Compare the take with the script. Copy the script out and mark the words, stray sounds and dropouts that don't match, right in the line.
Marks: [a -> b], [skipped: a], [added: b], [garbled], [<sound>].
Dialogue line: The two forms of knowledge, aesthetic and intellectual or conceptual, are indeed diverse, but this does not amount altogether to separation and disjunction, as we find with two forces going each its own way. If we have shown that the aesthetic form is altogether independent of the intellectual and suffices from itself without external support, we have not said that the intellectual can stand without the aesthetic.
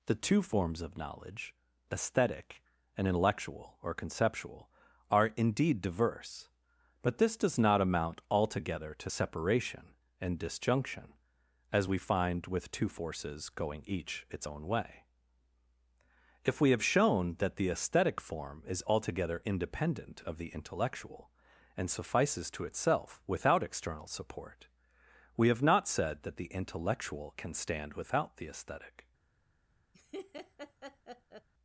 The two forms of knowledge, aesthetic and intellectual or conceptual, are indeed diverse, but this does not amount altogether to separation and disjunction, as we find with two forces going each its own way. If we have shown that the aesthetic form is altogether independent of the intellectual and suffices [from -> to] itself without external support, we have not said that the intellectual can stand without the aesthetic. [laugh]